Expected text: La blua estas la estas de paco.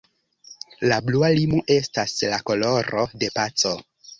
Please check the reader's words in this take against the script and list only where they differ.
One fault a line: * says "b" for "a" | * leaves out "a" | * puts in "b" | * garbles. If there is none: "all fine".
* puts in "limo"
* says "koloro" for "estas"